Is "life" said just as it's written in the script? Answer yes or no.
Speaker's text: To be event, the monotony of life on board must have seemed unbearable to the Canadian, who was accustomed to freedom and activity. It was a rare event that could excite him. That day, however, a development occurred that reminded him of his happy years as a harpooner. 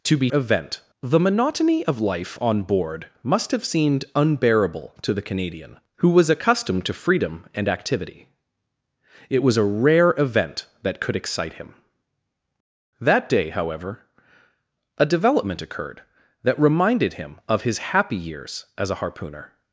yes